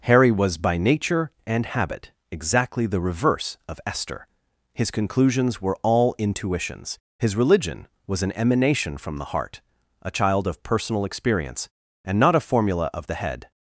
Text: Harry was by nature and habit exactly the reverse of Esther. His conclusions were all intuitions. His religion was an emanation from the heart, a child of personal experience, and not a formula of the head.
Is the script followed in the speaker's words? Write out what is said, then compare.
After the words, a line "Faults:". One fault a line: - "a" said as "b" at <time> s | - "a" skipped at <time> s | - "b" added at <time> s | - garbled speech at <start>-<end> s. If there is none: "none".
Harry was by nature and habit exactly the reverse of Esther. His conclusions were all intuitions. His religion was an emanation from the heart, a child of personal experience, and not a formula of the head.
Faults:
none